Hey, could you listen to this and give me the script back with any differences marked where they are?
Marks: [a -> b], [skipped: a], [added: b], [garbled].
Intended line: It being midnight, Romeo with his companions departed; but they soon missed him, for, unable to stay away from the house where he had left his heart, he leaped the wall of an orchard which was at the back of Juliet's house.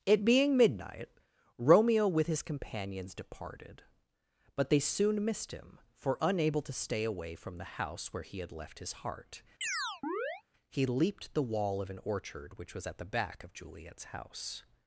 It being midnight, Romeo with his companions departed; but they soon missed him, for, unable to stay away from the house where he had left his heart, he leaped the wall of an orchard which was at the back of Juliet's house.